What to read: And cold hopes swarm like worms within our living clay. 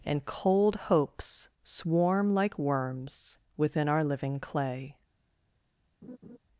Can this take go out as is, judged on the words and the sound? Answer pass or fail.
fail